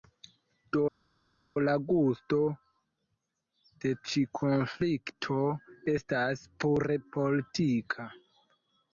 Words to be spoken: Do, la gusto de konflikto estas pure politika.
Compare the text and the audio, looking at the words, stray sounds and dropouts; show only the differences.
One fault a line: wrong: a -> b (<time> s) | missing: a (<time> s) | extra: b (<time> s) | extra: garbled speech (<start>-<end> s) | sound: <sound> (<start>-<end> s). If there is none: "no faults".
extra: ĉi (4.1 s)